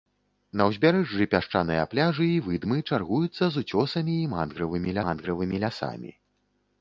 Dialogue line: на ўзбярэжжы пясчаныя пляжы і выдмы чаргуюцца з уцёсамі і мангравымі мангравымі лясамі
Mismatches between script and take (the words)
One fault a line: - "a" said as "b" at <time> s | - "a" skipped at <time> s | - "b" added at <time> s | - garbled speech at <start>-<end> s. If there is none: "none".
none